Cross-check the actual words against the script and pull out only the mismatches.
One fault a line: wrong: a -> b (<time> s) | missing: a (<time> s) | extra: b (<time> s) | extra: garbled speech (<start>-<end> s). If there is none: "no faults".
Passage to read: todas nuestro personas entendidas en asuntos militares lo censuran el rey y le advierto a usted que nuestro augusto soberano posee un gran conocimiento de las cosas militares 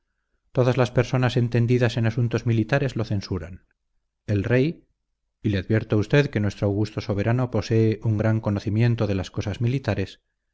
wrong: nuestro -> las (0.8 s)